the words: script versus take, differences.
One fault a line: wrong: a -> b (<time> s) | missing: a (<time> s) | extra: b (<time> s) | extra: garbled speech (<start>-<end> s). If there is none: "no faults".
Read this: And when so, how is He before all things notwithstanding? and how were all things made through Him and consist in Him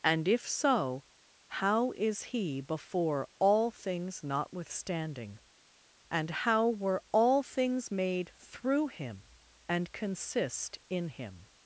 wrong: when -> if (0.3 s)